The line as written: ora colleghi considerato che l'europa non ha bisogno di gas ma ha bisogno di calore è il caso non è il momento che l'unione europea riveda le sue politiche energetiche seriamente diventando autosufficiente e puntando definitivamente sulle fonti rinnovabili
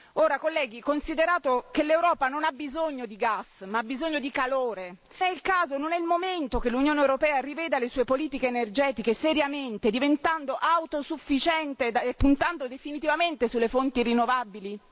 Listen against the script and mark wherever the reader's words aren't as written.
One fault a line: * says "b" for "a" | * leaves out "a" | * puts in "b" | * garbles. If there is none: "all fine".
all fine